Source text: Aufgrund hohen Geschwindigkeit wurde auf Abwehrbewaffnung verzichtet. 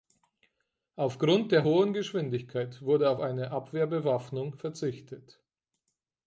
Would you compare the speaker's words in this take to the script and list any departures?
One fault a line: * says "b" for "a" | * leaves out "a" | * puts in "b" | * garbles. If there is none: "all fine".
* puts in "der"
* puts in "eine"